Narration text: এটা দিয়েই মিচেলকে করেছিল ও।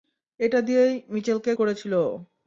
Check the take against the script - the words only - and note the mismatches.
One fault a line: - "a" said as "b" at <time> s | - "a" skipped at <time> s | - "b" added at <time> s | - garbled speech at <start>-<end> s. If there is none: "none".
none